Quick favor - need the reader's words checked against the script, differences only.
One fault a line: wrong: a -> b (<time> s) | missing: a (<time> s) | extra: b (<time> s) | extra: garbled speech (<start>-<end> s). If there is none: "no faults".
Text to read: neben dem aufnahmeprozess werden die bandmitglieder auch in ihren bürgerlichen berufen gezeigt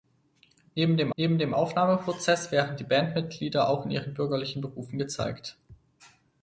extra: neben dem (1.1 s)